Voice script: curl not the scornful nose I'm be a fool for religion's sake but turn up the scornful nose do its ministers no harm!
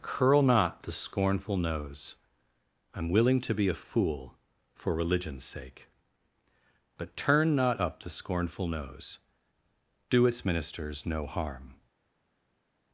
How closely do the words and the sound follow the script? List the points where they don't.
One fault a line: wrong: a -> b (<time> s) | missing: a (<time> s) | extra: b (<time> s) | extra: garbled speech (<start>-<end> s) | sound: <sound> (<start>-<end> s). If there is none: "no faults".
extra: willing to (3.1 s)
extra: not (7.5 s)